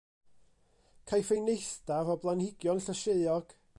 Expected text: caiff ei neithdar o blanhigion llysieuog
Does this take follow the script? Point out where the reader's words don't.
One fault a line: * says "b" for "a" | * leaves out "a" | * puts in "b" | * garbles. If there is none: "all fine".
all fine